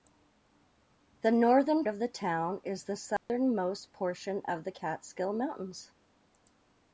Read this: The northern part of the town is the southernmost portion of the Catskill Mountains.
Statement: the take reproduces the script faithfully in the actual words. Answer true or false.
false